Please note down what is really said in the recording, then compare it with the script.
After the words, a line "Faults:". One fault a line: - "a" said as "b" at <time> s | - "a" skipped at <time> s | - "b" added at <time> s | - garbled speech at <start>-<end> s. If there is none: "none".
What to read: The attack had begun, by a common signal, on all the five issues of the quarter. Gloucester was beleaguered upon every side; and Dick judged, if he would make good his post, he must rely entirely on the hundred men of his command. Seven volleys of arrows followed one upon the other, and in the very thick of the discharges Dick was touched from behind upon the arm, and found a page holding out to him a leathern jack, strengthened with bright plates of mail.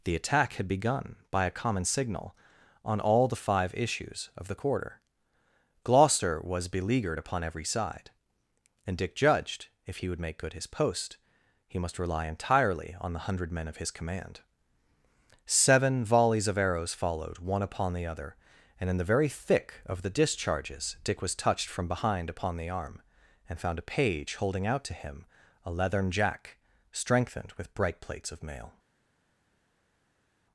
The attack had begun, by a common signal, on all the five issues of the quarter. Gloucester was beleaguered upon every side; and Dick judged, if he would make good his post, he must rely entirely on the hundred men of his command. Seven volleys of arrows followed one upon the other, and in the very thick of the discharges Dick was touched from behind upon the arm, and found a page holding out to him a leathern jack, strengthened with bright plates of mail.
Faults:
none